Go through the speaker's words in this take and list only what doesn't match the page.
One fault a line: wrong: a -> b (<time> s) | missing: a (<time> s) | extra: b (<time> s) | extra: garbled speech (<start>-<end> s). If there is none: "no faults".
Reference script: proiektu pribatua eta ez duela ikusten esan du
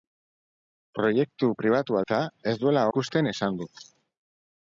no faults